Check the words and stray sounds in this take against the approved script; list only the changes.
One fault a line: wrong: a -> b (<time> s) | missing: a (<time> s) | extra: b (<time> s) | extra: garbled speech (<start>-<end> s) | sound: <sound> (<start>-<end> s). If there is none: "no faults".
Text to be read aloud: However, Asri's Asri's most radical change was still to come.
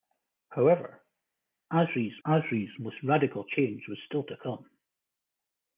no faults